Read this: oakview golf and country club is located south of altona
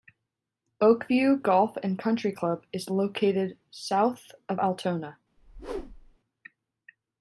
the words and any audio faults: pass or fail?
fail